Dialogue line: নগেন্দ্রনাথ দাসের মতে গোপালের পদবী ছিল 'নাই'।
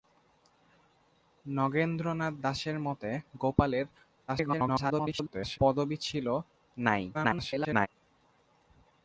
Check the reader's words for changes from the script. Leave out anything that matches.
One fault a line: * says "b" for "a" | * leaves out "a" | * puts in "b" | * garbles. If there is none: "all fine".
* garbles
* garbles